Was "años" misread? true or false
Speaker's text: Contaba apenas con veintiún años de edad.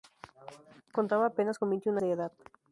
true